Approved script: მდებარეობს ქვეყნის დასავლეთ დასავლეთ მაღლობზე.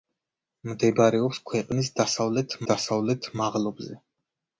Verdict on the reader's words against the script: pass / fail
pass